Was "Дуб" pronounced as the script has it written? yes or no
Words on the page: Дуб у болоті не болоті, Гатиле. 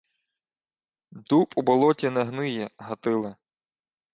yes